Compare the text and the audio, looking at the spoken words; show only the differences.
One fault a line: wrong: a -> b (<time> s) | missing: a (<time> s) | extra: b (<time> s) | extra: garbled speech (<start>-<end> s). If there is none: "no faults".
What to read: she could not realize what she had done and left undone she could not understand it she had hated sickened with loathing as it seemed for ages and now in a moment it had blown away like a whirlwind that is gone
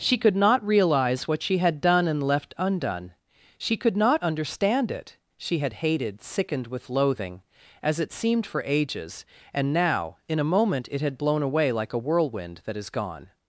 no faults